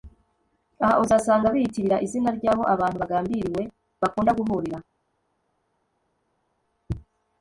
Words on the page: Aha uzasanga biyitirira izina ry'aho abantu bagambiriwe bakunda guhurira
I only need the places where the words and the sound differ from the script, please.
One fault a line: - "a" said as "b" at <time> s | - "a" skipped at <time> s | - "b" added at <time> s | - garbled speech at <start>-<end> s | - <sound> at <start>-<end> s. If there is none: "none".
none